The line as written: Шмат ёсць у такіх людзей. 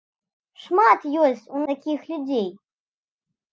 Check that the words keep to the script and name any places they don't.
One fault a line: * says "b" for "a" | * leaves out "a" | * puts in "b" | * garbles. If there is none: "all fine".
all fine